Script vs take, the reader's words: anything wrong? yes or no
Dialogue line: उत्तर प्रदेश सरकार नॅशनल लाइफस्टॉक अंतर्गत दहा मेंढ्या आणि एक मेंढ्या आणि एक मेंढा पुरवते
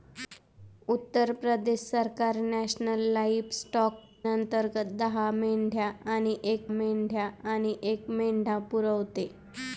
no